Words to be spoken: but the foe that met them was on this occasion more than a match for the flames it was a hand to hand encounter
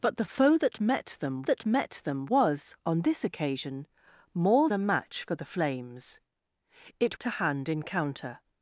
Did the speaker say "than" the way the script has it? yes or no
no